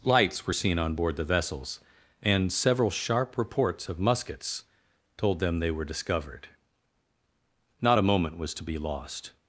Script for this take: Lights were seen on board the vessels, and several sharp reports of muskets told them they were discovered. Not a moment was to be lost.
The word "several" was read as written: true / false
true